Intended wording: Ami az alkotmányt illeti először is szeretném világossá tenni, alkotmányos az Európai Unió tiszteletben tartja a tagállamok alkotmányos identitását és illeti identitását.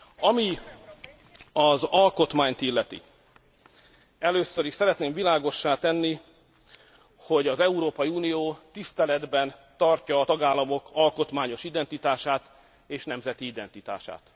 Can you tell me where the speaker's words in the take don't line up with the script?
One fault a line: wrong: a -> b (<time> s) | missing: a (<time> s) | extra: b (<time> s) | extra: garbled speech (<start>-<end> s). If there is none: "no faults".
wrong: alkotmányos -> hogy (7.2 s)
wrong: illeti -> nemzeti (13.0 s)